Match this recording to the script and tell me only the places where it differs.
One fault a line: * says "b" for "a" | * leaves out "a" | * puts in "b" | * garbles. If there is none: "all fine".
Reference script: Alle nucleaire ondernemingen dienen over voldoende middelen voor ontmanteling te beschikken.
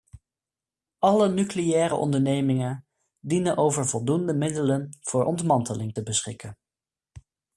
all fine